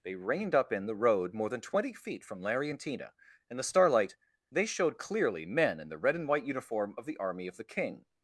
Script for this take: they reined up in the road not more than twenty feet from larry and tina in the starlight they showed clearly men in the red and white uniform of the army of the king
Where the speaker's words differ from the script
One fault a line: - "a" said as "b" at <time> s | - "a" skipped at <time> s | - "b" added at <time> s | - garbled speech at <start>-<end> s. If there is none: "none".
- "not" skipped at 1.3 s